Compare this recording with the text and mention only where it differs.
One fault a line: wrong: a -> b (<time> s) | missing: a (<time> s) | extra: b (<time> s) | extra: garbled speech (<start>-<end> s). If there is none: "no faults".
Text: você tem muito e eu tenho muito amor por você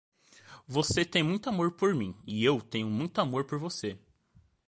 extra: amor por mim (1.5 s)